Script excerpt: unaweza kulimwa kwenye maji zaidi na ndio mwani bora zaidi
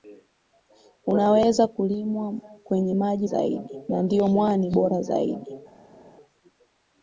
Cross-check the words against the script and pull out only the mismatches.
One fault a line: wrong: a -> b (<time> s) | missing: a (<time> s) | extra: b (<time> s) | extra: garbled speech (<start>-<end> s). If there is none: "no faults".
no faults